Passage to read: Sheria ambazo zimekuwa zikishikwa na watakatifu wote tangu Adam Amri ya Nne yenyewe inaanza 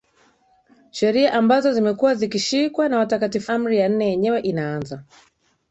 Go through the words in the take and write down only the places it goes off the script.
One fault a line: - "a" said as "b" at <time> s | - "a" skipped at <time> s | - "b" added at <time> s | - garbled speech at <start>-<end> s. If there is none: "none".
- "wote tangu Adam" skipped at 3.5 s